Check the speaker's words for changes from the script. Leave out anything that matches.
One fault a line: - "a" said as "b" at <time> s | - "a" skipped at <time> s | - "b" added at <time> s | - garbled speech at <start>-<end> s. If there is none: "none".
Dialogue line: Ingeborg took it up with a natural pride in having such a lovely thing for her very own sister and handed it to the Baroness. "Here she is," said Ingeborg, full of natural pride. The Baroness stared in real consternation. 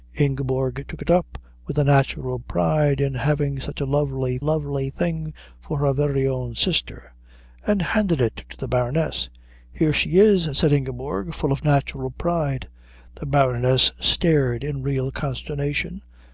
- "lovely" added at 4.4 s